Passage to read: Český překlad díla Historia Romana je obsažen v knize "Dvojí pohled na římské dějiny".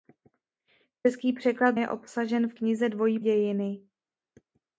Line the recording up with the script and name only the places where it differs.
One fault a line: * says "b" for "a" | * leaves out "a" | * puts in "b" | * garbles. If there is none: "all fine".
* leaves out "díla Historia Romana"
* leaves out "pohled na římské"